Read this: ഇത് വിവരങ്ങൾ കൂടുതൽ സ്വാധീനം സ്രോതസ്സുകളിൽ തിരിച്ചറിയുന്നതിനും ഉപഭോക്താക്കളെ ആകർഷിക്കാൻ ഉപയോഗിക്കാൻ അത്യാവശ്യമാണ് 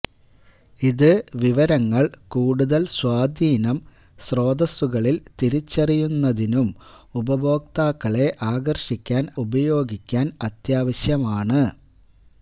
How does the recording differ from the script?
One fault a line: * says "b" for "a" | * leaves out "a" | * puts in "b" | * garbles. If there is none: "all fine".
all fine